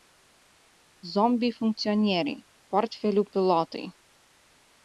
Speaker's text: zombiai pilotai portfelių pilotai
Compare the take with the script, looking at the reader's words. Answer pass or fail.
fail